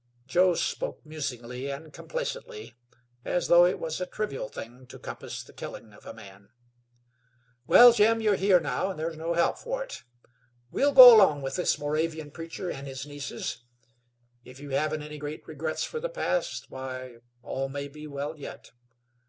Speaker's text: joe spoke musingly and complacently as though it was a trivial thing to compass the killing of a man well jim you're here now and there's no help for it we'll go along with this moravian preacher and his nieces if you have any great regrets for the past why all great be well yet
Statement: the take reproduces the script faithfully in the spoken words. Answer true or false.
false